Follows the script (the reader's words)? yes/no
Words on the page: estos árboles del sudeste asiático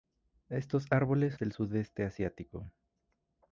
yes